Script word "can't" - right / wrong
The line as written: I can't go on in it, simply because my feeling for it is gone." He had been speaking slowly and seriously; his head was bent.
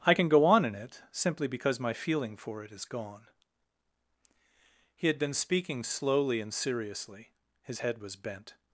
wrong